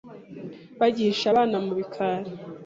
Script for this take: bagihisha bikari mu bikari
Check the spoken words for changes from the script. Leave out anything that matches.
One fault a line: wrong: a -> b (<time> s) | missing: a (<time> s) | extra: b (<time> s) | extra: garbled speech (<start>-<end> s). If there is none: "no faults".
wrong: bikari -> abana (1.3 s)